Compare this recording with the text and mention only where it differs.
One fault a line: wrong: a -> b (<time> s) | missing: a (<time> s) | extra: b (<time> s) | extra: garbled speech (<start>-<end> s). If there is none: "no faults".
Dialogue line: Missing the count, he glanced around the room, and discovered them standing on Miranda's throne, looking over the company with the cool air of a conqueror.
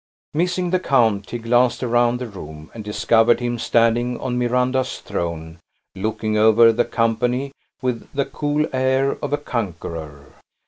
wrong: them -> him (3.4 s)